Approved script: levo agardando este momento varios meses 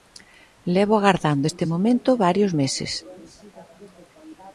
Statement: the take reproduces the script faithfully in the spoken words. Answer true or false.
true